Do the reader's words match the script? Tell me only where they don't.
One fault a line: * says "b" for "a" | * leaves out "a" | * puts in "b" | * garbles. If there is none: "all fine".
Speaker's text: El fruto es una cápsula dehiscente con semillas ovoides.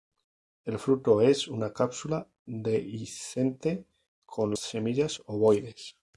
all fine